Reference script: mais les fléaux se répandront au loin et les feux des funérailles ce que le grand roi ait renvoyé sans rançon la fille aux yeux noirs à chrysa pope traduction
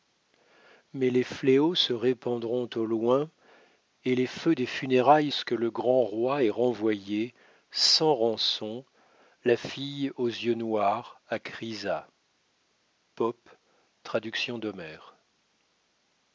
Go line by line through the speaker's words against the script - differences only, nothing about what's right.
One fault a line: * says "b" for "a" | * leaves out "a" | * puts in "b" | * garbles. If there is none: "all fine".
all fine